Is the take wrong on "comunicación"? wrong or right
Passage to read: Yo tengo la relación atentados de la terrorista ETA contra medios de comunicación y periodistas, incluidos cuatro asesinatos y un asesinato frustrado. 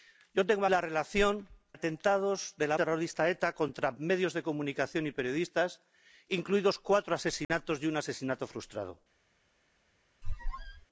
right